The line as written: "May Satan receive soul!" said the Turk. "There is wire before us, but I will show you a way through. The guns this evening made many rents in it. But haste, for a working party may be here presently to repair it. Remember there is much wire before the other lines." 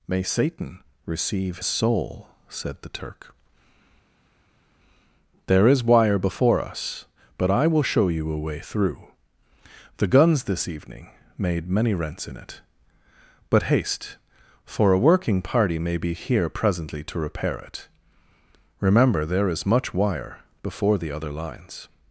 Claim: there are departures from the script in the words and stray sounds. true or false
false